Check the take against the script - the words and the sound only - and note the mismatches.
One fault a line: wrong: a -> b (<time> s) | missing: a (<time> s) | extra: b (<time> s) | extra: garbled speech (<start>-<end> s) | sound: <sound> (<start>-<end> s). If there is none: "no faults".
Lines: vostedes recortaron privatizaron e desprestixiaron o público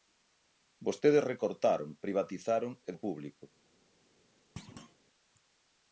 missing: desprestixiaron (2.9 s)
sound: thud (4.6-5.0 s)